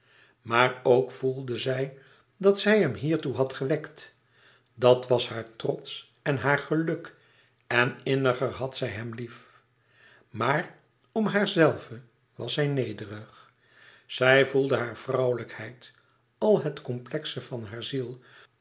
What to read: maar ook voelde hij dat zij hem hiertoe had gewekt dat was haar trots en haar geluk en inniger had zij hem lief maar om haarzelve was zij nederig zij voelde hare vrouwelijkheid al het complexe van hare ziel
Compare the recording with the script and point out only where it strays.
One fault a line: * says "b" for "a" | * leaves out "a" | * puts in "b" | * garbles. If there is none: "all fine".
* says "zij" for "hij"